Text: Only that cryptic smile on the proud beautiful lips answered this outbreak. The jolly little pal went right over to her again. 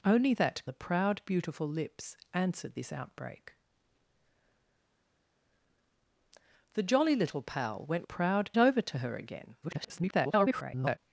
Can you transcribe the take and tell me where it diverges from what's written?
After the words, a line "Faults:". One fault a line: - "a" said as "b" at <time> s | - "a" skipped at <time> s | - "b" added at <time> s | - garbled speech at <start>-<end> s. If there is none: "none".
Only that the proud beautiful lips answered this outbreak. The jolly little pal went proud over to her again. [garbled]
Faults:
- "cryptic smile on" skipped at 0.6 s
- "right" said as "proud" at 8.0 s
- garbled speech at 9.6-11.0 s